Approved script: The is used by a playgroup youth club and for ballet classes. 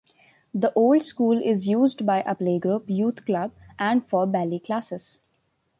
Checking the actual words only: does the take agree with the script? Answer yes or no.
no